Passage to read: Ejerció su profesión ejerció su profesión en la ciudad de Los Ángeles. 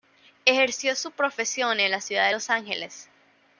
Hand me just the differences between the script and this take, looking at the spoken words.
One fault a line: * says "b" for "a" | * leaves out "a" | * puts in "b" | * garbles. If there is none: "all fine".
* leaves out "ejerció su profesión"